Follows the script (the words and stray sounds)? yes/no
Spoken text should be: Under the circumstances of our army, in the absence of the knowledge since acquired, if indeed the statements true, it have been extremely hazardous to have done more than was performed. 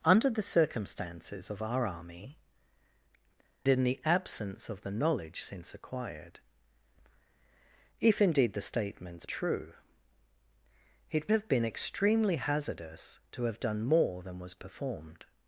yes